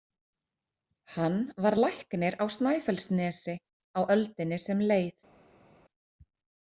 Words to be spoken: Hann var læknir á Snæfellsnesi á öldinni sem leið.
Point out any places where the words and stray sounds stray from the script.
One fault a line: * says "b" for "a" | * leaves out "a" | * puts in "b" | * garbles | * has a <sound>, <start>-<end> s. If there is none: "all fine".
all fine